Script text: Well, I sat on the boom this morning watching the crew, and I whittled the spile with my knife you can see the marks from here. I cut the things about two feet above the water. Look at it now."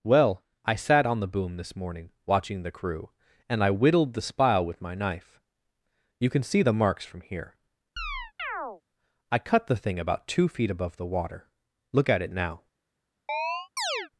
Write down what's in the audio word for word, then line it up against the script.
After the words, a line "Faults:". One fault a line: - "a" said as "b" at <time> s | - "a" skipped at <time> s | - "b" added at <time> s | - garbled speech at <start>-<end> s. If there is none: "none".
Well, I sat on the boom this morning watching the crew, and I whittled the spile with my knife you can see the marks from here. I cut the thing about two feet above the water. Look at it now."
Faults:
- "things" said as "thing" at 9.7 s